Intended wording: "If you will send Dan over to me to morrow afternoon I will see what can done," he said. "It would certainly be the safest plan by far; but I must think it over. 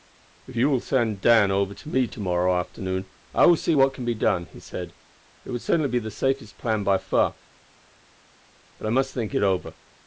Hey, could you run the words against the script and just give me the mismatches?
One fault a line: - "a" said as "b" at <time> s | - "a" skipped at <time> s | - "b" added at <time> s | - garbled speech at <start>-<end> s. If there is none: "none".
- "be" added at 4.0 s